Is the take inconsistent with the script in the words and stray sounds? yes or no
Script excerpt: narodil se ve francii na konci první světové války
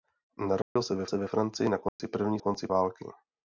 yes